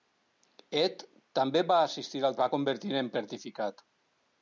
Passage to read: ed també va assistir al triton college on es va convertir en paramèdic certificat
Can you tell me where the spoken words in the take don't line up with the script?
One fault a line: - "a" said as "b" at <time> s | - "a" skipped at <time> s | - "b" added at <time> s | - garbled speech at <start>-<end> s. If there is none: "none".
- "triton college on" skipped at 2.4 s
- "paramèdic" skipped at 3.1 s